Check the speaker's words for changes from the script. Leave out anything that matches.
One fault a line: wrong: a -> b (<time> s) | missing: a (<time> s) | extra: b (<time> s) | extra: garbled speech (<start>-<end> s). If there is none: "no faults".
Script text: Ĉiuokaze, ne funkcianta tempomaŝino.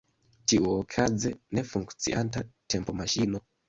no faults